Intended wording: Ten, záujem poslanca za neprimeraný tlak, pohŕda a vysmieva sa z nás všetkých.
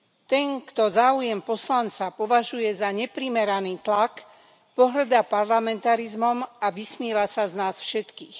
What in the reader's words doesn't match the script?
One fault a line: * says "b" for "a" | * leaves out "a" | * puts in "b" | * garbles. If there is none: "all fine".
* puts in "kto"
* puts in "považuje"
* puts in "parlamentarizmom"